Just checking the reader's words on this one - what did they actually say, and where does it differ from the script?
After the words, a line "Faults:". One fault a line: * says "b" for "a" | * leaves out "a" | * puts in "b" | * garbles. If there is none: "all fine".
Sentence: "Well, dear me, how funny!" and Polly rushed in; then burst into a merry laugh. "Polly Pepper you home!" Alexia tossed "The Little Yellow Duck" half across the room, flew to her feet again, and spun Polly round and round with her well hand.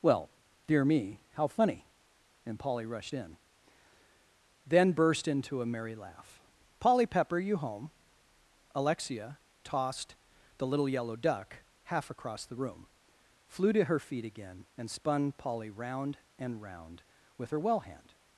"Well, dear me, how funny!" and Polly rushed in; then burst into a merry laugh. "Polly Pepper you home!" Alexia tossed "The Little Yellow Duck" half across the room, flew to her feet again, and spun Polly round and round with her well hand.
Faults:
all fine